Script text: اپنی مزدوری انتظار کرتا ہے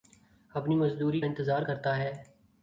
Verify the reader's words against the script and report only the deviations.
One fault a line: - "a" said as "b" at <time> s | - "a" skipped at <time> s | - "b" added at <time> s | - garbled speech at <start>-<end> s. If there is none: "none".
none